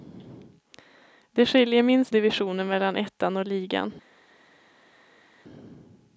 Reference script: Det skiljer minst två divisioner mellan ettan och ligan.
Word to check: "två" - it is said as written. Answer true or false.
false